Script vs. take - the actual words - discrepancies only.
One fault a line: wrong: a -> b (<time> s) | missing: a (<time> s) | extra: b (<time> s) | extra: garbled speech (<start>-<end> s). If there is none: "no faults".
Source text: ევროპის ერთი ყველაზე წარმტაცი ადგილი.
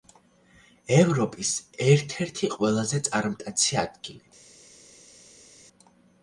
extra: ერთ (1.9 s)